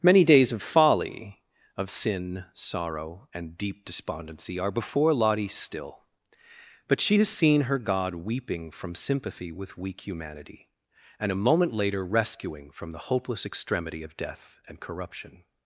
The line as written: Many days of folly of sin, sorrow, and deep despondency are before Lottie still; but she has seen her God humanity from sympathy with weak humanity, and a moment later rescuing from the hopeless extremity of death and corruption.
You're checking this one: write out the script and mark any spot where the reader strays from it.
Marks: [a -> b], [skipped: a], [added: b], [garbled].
Many days of folly of sin, sorrow, and deep despondency are before Lottie still; but she has seen her God [humanity -> weeping] from sympathy with weak humanity, and a moment later rescuing from the hopeless extremity of death and corruption.